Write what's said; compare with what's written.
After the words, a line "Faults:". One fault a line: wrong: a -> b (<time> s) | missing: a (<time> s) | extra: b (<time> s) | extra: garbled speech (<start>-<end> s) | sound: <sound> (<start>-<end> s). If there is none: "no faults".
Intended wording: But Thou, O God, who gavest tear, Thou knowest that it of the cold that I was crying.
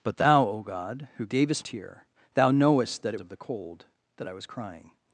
But Thou, O God, who gavest tear, Thou knowest that it of the cold that I was crying.
Faults:
no faults